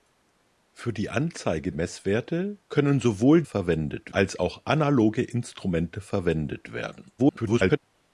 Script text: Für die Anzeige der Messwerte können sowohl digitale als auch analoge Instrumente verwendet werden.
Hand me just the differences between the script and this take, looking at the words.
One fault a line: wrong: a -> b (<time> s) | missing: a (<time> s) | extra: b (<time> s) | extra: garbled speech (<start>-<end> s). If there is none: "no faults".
missing: der (1.7 s)
wrong: digitale -> verwendet (3.4 s)
extra: garbled speech (7.2-7.8 s)